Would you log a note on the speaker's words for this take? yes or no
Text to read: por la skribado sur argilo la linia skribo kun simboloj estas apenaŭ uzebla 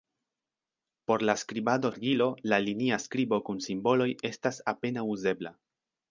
yes